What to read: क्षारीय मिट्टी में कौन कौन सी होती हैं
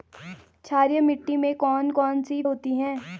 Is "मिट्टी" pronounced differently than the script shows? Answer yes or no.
no